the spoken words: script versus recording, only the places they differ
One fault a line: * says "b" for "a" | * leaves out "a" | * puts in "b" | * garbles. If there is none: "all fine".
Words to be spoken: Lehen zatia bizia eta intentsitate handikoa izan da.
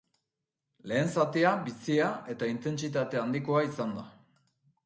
all fine